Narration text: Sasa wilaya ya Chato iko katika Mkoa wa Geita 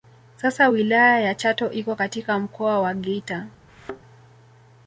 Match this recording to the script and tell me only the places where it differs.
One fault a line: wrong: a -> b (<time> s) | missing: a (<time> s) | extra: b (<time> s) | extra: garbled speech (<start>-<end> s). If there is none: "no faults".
no faults